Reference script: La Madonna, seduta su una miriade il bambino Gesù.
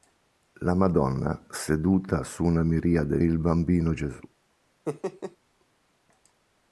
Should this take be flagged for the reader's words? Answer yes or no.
no